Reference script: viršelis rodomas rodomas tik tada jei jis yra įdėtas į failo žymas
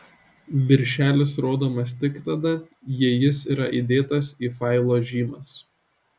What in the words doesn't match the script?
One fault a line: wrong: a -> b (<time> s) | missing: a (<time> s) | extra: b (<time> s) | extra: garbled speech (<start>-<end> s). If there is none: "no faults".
missing: rodomas (1.9 s)